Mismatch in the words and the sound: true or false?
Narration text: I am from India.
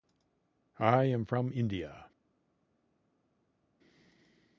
false